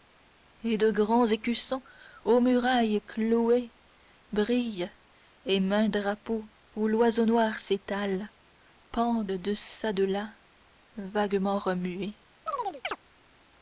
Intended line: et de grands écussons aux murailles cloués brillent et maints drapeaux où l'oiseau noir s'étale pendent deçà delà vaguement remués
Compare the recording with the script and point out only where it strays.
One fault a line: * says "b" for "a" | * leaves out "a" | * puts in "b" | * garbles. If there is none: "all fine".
all fine